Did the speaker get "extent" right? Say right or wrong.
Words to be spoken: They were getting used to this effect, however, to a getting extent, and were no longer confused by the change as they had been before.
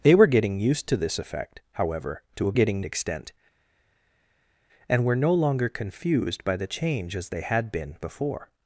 right